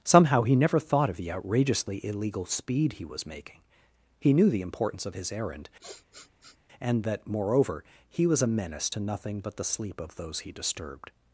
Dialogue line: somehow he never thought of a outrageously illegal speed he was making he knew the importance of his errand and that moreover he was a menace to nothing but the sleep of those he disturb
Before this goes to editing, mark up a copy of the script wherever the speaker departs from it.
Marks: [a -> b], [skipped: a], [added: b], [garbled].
somehow he never thought of [a -> the] outrageously illegal speed he was making he knew the importance of his errand and that moreover he was a menace to nothing but the sleep of those he [disturb -> disturbed]